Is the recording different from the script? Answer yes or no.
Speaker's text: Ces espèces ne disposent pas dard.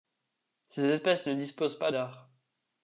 no